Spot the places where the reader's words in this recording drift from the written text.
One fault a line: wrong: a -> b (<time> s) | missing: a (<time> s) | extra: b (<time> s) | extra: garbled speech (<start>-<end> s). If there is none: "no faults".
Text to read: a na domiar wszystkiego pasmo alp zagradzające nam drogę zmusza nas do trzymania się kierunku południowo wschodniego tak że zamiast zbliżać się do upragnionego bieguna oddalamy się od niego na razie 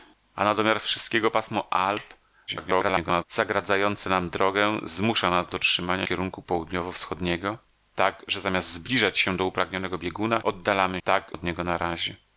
extra: garbled speech (2.5-3.2 s)
missing: się (6.1 s)
wrong: się -> tak (11.0 s)